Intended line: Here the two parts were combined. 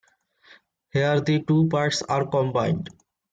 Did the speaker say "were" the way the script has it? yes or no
no